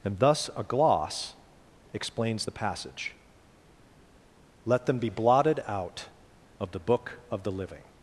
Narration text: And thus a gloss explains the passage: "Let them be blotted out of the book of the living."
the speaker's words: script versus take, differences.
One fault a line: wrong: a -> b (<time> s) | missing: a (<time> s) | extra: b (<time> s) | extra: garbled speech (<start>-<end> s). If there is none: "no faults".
no faults